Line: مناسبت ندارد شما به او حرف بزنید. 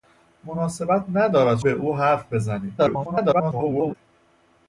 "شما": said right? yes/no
no